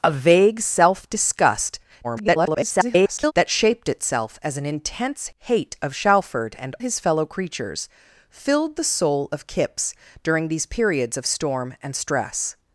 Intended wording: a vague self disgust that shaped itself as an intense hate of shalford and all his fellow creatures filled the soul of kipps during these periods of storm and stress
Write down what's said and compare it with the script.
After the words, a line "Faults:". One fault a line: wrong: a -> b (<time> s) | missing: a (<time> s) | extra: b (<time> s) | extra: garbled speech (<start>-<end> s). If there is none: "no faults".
a vague self disgust [garbled] that shaped itself as an intense hate of shalford and his fellow creatures filled the soul of kipps during these periods of storm and stress
Faults:
extra: garbled speech (2.0-3.3 s)
missing: all (6.7 s)